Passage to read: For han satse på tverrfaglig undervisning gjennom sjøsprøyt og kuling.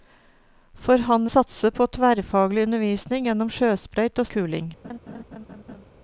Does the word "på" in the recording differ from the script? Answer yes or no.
no